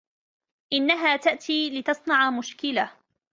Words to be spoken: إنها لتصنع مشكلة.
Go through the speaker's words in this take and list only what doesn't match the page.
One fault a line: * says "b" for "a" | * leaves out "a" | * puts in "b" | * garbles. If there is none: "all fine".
* puts in "تأتي"